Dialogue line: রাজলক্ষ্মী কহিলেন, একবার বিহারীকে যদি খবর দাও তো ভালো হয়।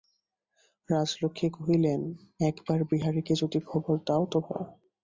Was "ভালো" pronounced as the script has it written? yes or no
no